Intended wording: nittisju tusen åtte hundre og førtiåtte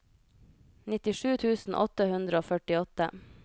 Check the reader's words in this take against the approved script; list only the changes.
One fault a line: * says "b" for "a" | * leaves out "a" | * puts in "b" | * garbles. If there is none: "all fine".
all fine